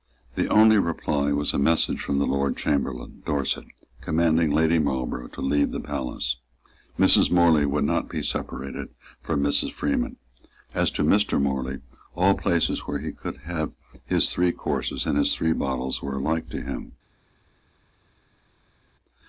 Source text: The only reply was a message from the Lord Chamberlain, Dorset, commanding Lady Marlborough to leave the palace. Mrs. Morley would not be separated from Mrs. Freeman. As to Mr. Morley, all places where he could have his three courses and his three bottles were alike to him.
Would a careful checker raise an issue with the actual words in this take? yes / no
no